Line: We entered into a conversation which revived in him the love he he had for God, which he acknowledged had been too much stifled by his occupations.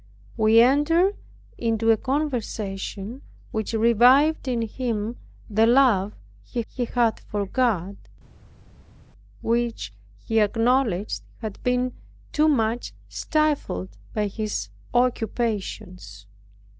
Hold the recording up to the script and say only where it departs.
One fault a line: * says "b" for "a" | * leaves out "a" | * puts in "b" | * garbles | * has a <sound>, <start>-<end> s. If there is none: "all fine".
all fine